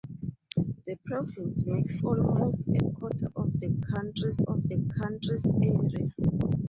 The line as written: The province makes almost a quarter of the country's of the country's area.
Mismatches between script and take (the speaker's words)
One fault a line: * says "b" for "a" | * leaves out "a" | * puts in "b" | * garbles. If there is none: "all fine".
all fine